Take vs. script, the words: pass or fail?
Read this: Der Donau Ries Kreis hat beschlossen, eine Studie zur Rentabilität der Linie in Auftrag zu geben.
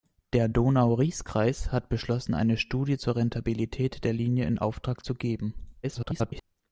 fail